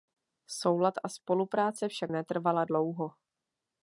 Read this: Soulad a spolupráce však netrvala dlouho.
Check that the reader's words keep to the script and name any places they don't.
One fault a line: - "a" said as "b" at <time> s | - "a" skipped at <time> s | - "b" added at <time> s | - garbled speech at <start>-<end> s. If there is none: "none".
none